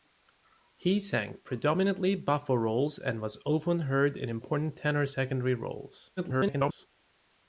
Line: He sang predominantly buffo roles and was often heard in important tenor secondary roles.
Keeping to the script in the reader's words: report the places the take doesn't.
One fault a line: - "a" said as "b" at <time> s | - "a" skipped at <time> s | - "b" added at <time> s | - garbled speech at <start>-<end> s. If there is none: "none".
- garbled speech at 6.2-6.9 s